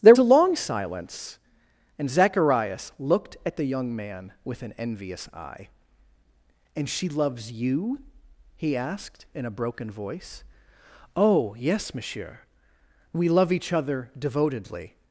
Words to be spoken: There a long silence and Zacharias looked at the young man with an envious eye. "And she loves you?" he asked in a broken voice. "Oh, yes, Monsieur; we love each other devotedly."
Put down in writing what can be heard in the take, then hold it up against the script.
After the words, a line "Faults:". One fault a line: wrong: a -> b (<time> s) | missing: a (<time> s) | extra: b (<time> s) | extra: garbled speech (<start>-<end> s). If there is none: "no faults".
There a long silence and Zacharias looked at the young man with an envious eye. "And she loves you?" he asked in a broken voice. "Oh, yes, Monsieur; we love each other devotedly."
Faults:
no faults